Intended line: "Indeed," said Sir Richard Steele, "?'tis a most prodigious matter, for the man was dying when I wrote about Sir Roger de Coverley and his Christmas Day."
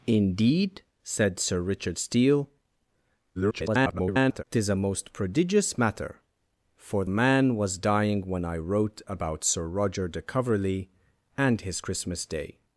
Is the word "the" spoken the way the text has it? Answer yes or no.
no